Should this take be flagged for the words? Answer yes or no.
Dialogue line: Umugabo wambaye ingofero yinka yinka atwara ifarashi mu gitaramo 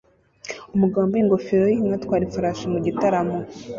yes